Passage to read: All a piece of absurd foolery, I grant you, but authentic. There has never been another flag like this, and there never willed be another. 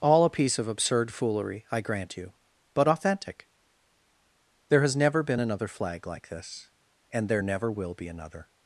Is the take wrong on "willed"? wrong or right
wrong